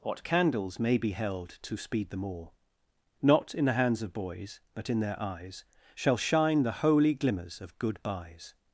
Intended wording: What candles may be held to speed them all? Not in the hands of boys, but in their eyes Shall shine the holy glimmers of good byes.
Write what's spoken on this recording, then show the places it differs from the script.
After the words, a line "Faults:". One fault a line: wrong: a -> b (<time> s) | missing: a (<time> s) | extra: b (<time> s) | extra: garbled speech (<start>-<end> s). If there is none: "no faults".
What candles may be held to speed them all? Not in the hands of boys, but in their eyes Shall shine the holy glimmers of good byes.
Faults:
no faults